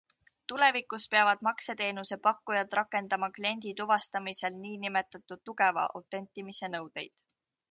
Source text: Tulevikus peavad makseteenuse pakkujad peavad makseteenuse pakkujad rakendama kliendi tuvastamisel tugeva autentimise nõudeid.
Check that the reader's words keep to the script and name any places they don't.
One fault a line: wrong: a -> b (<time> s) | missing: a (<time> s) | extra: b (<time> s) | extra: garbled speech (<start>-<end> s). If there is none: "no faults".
missing: peavad makseteenuse pakkujad (2.7 s)
extra: niinimetatud (4.7 s)